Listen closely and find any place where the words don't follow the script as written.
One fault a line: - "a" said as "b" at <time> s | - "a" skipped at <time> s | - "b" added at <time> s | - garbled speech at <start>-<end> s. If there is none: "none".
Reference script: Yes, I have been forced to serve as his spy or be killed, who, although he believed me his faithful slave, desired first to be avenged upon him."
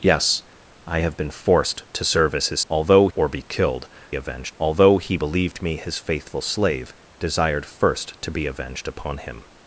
- "spy" said as "although" at 2.7 s
- "who" said as "avenged" at 4.1 s